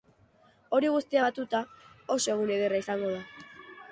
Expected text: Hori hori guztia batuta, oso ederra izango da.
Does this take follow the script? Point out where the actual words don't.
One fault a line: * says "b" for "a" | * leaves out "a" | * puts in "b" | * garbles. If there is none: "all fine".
* leaves out "hori"
* puts in "egun"